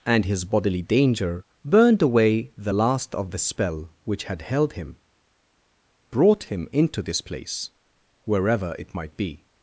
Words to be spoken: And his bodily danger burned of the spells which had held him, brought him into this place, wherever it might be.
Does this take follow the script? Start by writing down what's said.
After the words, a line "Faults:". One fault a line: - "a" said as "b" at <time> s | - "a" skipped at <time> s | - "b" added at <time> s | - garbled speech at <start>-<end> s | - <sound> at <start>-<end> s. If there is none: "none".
And his bodily danger burned away the last of the spell which had held him, brought him into this place, wherever it might be.
Faults:
- "away the last" added at 2.0 s
- "spells" said as "spell" at 3.4 s